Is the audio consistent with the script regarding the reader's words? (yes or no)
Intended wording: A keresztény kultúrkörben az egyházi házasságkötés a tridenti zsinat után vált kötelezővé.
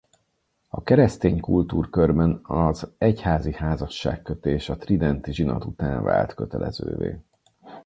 yes